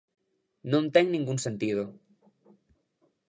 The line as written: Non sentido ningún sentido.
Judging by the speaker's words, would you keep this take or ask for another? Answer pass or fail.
fail